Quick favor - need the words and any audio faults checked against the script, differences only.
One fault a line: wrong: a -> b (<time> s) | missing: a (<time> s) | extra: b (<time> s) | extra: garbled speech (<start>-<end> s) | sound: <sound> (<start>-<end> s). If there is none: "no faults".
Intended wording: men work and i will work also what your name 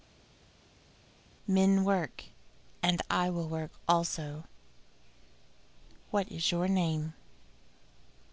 extra: is (6.3 s)